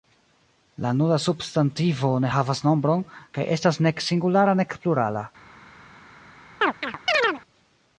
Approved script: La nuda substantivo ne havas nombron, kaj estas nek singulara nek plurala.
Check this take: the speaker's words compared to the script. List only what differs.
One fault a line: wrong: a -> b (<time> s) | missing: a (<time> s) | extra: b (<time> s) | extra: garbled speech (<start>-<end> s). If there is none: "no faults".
no faults